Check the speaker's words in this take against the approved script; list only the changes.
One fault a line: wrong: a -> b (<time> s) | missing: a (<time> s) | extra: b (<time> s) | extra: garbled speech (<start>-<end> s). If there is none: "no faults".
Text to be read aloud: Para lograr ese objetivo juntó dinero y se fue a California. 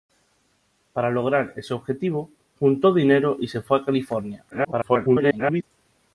extra: garbled speech (4.5-5.6 s)